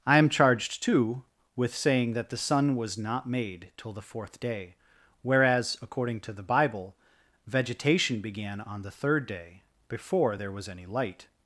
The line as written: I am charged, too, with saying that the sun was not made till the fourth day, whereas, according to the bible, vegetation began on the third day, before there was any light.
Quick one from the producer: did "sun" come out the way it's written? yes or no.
yes